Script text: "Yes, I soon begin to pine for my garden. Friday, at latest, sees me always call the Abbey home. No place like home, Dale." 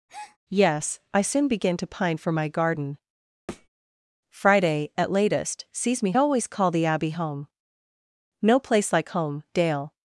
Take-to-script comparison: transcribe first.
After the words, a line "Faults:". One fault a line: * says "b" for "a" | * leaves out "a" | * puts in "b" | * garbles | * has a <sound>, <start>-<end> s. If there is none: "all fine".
"Yes, I soon begin to pine for my garden. Friday, at latest, sees me always call the Abbey home. No place like home, Dale."
Faults:
* has a breath, 0.1-0.4 s
* has a thud, 3.5-3.7 s